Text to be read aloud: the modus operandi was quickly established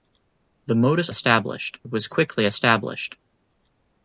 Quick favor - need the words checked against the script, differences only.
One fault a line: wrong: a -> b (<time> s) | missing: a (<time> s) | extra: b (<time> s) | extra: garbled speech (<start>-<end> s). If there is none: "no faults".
wrong: operandi -> established (1.1 s)